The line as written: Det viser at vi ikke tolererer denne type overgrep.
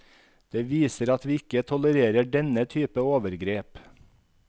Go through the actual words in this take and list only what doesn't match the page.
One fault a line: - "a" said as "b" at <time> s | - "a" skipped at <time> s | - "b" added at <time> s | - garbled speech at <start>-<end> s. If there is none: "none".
none